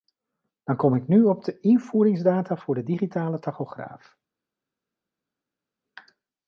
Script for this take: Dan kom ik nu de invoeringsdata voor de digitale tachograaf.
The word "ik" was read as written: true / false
true